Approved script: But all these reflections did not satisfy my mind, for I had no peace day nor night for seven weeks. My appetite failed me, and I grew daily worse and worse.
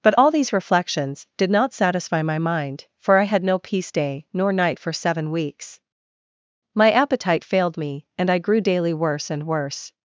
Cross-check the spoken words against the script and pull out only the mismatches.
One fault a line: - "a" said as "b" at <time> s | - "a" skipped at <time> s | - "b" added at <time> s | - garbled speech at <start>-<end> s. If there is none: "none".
none